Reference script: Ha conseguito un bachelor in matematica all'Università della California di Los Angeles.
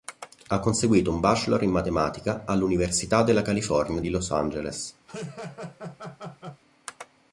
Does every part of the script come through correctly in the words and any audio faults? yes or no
no